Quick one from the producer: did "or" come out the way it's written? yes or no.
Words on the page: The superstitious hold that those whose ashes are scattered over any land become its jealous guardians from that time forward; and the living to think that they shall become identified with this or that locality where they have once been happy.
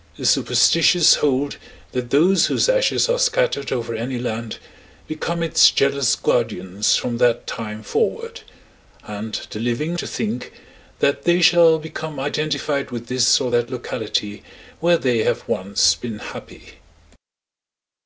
yes